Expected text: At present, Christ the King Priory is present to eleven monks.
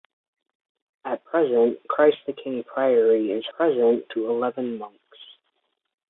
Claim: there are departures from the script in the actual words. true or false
false